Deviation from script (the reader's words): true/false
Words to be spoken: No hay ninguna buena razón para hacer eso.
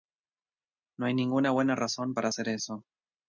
false